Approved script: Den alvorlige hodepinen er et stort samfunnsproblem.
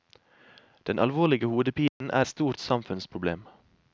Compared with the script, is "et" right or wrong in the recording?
wrong